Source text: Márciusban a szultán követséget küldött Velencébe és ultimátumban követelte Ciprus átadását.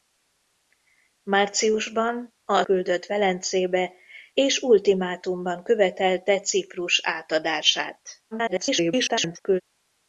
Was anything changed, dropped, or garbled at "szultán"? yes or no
yes